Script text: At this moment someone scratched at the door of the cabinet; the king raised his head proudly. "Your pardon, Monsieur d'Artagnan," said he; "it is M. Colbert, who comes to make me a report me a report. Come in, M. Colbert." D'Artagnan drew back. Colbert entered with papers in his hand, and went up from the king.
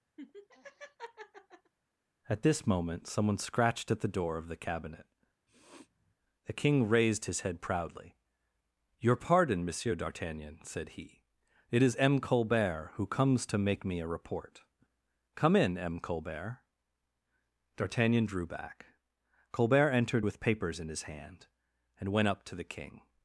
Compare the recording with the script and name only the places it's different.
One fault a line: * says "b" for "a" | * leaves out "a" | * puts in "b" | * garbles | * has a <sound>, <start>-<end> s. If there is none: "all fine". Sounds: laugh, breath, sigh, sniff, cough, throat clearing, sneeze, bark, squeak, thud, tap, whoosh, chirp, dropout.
* has a laugh, 0.2-1.7 s
* has a sniff, 5.5-6.1 s
* leaves out "me a report"
* says "to" for "from"